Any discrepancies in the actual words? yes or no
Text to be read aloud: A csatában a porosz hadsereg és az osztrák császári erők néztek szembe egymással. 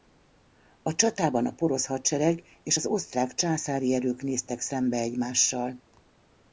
no